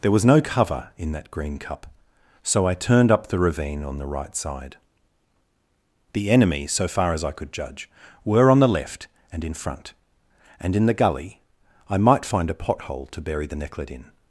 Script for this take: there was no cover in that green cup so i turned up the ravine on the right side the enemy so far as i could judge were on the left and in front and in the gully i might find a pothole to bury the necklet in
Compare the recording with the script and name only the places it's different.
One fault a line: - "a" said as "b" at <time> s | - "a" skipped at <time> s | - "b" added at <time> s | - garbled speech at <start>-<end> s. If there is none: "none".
none